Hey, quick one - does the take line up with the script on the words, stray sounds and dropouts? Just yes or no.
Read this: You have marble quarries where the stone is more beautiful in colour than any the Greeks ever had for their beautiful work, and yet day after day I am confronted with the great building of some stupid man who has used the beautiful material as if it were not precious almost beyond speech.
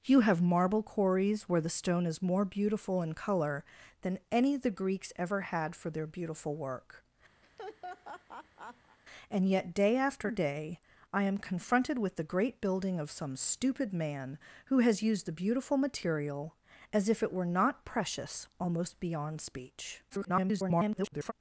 no